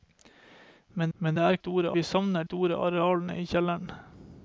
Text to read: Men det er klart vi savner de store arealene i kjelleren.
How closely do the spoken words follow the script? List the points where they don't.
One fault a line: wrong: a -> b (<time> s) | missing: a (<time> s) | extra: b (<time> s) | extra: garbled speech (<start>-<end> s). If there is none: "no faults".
extra: men (1.2 s)
wrong: klart -> store (1.6 s)
missing: de (2.4 s)